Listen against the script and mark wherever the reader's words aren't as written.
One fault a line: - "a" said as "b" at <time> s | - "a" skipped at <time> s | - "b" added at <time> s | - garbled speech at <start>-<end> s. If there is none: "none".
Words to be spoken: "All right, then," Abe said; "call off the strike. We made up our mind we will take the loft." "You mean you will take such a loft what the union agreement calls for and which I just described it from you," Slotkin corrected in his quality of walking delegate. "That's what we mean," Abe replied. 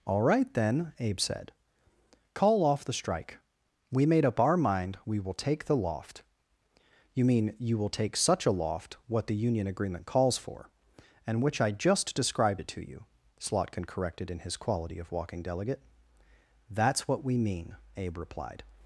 - "from" said as "to" at 12.7 s